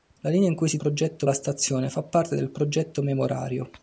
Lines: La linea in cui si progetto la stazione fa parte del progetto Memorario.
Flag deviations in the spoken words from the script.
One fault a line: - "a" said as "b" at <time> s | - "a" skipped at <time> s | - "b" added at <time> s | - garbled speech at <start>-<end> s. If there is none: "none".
none